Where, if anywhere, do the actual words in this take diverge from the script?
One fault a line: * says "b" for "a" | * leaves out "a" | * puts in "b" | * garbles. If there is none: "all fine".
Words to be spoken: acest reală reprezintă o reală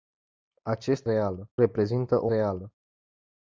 all fine